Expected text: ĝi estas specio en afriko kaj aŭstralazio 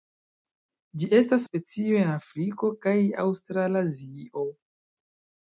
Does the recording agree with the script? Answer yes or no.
yes